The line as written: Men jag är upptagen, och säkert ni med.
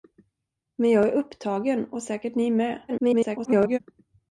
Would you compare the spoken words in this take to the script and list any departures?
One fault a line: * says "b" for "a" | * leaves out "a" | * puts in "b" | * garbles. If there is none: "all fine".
* garbles